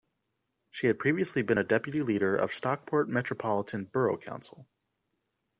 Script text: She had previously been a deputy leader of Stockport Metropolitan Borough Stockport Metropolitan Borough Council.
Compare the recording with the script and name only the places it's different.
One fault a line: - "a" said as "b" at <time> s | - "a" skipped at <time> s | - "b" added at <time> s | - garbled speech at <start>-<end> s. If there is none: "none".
- "Stockport Metropolitan Borough" skipped at 4.2 s